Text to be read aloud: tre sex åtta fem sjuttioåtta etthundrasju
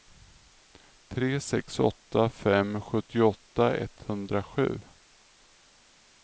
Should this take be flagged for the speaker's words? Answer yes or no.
no